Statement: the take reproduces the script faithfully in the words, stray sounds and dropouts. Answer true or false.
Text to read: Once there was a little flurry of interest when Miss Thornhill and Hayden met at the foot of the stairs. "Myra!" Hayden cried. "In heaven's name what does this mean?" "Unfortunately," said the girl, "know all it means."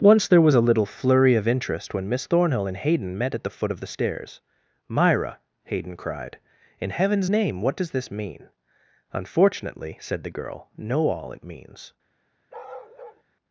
false